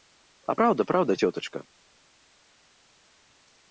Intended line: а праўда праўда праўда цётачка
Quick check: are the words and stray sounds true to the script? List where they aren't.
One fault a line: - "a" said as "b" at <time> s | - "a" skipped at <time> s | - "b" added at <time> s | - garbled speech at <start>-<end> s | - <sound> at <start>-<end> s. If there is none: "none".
- "праўда" skipped at 1.2 s